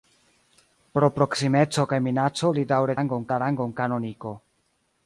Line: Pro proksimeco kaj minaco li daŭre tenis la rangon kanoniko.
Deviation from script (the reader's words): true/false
true